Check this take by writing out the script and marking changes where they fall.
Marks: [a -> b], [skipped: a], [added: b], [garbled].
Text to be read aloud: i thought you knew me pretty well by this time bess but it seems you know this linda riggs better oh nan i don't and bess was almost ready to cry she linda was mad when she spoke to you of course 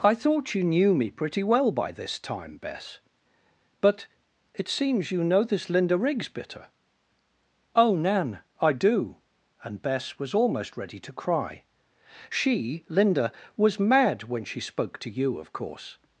i thought you knew me pretty well by this time bess but it seems you know this linda riggs [better -> bitter] oh nan i [don't -> do] and bess was almost ready to cry she linda was mad when she spoke to you of course